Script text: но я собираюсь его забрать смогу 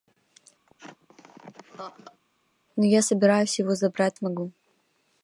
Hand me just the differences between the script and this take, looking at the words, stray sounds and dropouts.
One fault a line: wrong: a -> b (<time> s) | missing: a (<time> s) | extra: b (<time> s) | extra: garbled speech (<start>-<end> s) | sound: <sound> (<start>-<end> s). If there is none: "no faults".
sound: laugh (0.7-2.2 s)